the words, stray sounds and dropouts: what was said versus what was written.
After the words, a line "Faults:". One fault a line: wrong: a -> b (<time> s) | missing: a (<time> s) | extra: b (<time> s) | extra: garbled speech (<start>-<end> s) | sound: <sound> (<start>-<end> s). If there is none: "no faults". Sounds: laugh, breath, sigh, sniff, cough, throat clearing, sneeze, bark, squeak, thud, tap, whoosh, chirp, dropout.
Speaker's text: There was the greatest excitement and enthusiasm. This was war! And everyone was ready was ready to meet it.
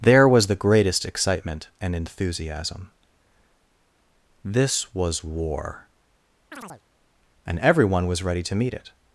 There was the greatest excitement and enthusiasm. This was war! And everyone was ready to meet it.
Faults:
sound: chirp (6.5-6.8 s)
missing: was ready (8.4 s)